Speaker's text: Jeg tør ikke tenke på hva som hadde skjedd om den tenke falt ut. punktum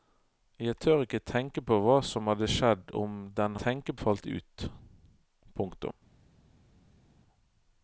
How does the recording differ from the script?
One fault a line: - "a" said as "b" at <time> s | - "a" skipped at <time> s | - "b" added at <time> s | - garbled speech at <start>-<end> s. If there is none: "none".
none